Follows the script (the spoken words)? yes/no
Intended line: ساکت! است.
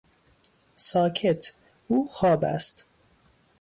no